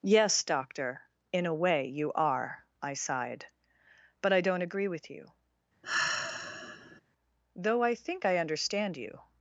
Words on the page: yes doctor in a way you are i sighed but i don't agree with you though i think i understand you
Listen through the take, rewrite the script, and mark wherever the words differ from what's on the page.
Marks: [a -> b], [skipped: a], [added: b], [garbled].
yes doctor in a way you are i sighed but i don't agree with you though i think i understand you